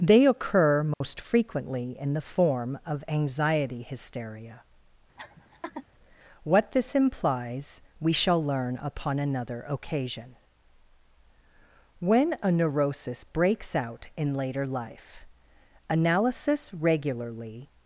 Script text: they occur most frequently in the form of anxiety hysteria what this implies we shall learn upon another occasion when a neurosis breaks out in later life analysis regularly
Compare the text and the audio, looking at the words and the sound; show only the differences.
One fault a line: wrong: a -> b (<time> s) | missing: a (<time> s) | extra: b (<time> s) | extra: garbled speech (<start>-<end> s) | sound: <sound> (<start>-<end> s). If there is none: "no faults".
sound: dropout (0.9-1.0 s)
sound: laugh (5.2-5.9 s)